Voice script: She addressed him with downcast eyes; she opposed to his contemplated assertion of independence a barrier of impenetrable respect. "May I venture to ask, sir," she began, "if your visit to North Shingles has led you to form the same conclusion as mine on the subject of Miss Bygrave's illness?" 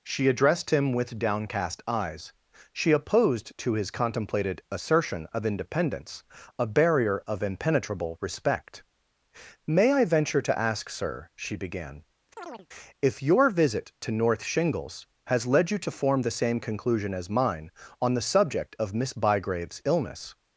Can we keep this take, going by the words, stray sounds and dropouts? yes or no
no